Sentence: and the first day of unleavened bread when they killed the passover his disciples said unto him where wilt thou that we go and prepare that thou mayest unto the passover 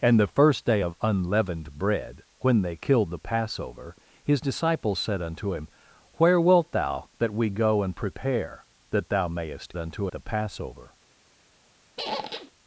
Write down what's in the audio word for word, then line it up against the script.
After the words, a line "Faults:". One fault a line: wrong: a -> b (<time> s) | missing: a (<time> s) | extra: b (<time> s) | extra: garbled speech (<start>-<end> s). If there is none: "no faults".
and the first day of unleavened bread when they killed the passover his disciples said unto him where wilt thou that we go and prepare that thou mayest unto the passover
Faults:
no faults